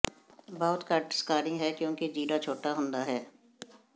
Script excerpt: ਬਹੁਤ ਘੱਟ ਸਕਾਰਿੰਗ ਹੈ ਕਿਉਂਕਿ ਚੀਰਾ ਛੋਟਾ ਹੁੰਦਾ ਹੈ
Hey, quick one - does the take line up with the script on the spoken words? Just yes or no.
yes